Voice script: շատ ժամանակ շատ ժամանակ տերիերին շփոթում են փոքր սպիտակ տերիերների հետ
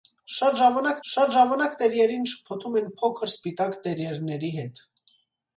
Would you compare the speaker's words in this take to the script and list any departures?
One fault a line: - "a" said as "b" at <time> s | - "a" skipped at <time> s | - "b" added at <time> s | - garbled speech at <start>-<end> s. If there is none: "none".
none